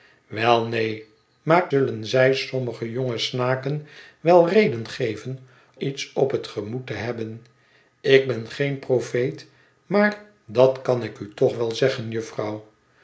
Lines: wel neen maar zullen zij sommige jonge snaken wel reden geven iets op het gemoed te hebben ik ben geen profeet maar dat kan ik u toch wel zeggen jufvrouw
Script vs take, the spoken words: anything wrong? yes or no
no